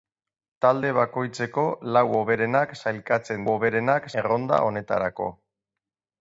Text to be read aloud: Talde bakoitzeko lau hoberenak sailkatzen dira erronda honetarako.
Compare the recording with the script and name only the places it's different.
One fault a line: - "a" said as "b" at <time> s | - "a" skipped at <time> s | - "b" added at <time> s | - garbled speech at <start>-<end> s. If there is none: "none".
- "dira" said as "hoberenak" at 3.5 s